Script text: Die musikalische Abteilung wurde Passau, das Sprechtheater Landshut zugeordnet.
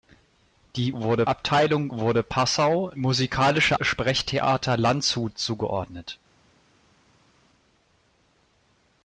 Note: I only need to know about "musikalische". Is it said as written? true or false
false